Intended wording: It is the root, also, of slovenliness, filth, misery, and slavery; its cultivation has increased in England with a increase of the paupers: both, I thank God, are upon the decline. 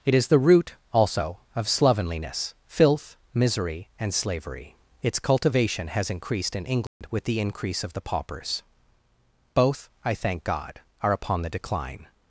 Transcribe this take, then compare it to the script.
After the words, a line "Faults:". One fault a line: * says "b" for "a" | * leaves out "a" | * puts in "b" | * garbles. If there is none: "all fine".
It is the root, also, of slovenliness, filth, misery, and slavery; its cultivation has increased in England with the increase of the paupers: both, I thank God, are upon the decline.
Faults:
* says "the" for "a"